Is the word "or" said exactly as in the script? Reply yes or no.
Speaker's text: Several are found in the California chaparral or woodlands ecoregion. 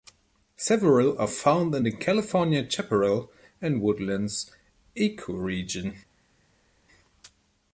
no